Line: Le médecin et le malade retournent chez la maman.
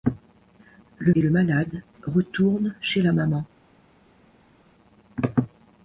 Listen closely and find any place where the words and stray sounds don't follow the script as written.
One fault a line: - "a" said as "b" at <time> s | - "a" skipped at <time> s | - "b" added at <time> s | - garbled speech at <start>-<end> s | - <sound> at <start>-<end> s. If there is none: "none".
- "médecin" skipped at 1.1 s